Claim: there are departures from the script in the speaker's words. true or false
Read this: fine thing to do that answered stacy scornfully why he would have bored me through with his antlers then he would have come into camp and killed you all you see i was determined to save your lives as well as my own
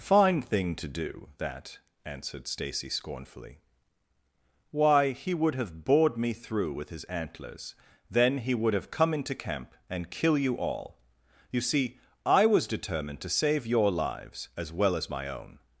true